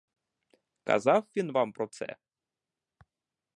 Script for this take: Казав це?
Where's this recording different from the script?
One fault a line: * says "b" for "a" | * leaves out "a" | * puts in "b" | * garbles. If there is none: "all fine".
* puts in "він вам про"